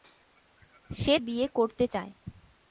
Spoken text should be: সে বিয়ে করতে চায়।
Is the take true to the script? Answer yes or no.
yes